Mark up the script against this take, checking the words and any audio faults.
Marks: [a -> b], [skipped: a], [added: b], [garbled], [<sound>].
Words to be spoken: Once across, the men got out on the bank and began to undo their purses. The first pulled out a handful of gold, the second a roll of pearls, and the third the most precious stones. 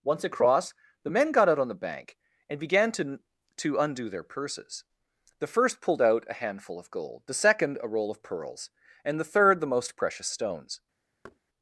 Once across, the men got out on the bank and began to [added: to] undo their purses. The first pulled out a handful of gold, the second a roll of pearls, and the third the most precious stones. [thud]